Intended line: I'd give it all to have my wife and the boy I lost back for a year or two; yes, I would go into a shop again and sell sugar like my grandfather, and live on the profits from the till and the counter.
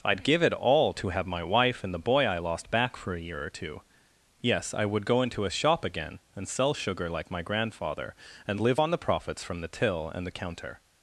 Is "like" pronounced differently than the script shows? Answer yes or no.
no